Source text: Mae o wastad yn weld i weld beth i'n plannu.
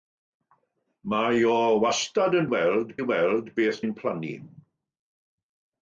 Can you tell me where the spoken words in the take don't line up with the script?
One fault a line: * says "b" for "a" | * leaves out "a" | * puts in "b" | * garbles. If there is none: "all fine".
all fine